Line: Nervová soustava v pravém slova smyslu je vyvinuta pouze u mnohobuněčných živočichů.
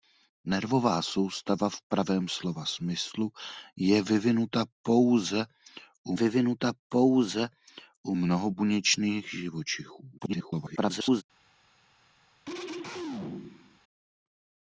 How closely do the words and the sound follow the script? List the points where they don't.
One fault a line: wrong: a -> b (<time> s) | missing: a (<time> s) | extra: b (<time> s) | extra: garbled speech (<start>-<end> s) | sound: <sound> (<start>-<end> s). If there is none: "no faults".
extra: vyvinuta pouze u (6.1 s)
extra: garbled speech (10.2-11.2 s)
sound: throat clearing (12.4-13.8 s)